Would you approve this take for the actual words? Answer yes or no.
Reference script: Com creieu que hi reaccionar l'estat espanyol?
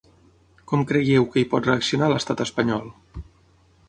no